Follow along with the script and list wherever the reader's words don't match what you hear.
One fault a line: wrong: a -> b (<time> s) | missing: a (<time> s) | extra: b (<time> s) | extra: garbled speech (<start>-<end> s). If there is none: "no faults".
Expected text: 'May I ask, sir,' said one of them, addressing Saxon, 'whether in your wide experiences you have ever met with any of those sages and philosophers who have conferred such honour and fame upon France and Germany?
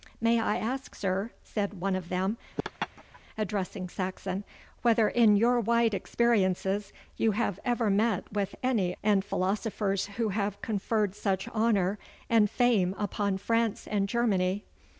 missing: of those sages (9.0 s)